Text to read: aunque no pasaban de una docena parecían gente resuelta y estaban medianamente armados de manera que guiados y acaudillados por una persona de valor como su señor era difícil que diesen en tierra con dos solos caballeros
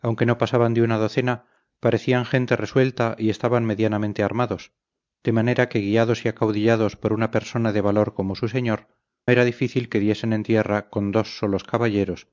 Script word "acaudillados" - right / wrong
right